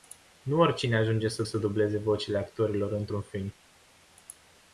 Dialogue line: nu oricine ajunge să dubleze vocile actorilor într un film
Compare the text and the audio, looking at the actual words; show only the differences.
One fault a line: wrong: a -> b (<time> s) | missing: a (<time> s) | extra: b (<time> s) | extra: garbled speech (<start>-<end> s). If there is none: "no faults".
extra: să (1.4 s)